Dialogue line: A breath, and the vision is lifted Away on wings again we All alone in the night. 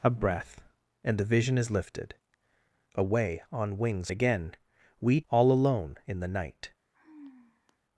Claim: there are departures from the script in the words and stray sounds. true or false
true